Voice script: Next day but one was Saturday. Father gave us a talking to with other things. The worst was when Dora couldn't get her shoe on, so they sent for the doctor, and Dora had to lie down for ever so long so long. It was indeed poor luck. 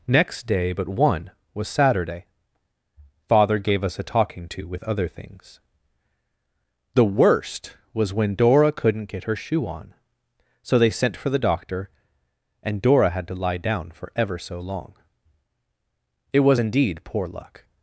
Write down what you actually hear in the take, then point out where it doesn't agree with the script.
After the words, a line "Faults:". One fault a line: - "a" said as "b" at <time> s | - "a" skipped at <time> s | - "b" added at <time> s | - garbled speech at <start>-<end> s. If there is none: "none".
Next day but one was Saturday. Father gave us a talking to with other things. The worst was when Dora couldn't get her shoe on, so they sent for the doctor, and Dora had to lie down for ever so long. It was indeed poor luck.
Faults:
- "so long" skipped at 14.9 s